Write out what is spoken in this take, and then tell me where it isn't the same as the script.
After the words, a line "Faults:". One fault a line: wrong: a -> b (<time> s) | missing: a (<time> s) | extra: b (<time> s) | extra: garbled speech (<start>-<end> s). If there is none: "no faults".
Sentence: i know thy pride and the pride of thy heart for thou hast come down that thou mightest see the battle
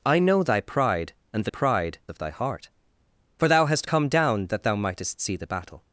i know thy pride and the pride of thy heart for thou hast come down that thou mightest see the battle
Faults:
no faults